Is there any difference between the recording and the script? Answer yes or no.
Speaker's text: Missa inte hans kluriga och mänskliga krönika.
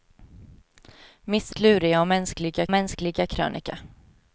yes